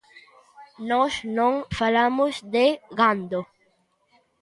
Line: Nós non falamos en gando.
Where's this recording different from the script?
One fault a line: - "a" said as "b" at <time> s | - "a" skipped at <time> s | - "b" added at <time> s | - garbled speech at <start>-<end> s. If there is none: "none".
- "en" said as "de" at 2.5 s